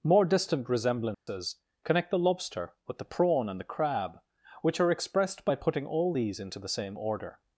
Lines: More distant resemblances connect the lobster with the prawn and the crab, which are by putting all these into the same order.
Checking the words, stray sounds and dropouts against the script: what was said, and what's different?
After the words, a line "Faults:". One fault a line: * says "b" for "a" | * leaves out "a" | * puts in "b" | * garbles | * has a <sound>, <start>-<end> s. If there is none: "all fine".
More distant resemblances connect the lobster with the prawn and the crab, which are expressed by putting all these into the same order.
Faults:
* has a dropout, 1.1-1.3 s
* puts in "expressed"